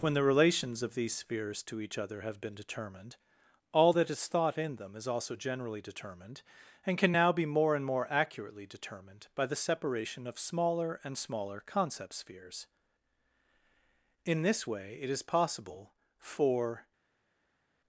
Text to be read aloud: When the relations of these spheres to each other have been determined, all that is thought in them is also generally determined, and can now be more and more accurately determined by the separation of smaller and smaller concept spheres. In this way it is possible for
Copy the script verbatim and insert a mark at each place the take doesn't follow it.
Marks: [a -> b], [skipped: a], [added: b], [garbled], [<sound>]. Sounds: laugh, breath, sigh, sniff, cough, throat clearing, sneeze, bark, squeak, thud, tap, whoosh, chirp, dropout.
When the relations of these spheres to each other have been determined, all that is thought in them is also generally determined, and can now be more and more accurately determined by the separation of smaller and smaller concept spheres. In this way it is possible for